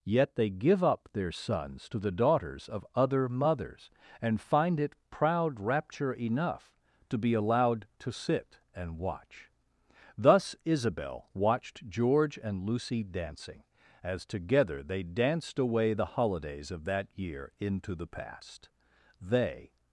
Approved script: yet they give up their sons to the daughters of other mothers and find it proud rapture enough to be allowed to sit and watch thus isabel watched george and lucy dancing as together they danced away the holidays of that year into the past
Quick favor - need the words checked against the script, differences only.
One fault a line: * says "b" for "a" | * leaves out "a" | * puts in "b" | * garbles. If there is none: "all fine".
* puts in "they"